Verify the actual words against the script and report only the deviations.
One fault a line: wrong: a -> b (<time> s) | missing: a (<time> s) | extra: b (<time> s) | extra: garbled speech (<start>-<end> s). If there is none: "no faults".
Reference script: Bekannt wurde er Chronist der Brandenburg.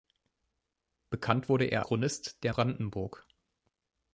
no faults